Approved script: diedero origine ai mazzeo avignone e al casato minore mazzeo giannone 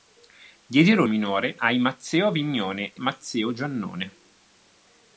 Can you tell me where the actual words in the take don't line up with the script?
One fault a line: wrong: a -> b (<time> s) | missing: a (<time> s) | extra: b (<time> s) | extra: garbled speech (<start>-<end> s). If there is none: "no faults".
wrong: origine -> minore (1.0 s)
missing: al casato minore (3.0 s)